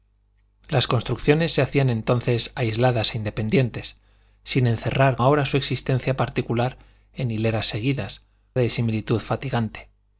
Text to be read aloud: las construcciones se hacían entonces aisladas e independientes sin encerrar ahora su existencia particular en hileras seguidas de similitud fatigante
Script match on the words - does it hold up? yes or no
yes